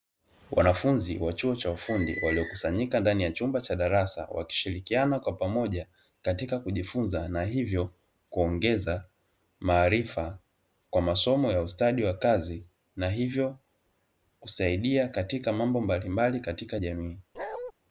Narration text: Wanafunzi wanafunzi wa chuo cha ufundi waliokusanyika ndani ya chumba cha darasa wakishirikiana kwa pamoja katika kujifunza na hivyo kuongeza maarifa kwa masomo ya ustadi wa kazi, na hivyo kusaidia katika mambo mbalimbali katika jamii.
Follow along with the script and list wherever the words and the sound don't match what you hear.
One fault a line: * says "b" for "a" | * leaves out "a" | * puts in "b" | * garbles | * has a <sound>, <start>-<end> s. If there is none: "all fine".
* leaves out "wanafunzi"
* has a bark, 17.3-17.7 s